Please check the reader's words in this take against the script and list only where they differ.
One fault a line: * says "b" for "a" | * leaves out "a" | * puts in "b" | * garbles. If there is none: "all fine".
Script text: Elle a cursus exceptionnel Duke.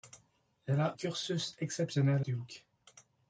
all fine